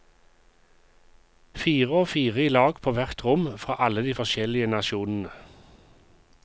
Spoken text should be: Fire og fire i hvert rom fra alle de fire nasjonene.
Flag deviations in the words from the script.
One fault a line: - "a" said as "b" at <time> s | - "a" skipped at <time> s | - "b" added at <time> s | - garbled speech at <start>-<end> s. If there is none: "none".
- "lag på" added at 2.5 s
- "fire" said as "forskjellige" at 4.2 s